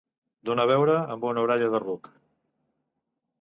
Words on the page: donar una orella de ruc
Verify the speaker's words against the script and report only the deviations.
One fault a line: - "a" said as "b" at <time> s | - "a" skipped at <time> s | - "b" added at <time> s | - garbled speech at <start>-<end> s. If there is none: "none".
- "beure amb" added at 0.7 s